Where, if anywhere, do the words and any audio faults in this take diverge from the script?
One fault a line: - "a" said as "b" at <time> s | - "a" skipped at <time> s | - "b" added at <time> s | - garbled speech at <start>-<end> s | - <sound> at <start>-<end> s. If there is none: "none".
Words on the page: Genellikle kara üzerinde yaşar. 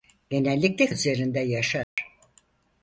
- "kara" skipped at 0.9 s
- dropout at 1.8-2.0 s